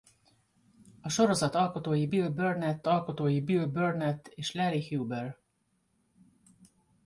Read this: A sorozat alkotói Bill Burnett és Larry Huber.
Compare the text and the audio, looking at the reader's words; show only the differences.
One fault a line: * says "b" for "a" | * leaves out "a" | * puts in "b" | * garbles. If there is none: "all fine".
* puts in "alkotói Bill Burnett"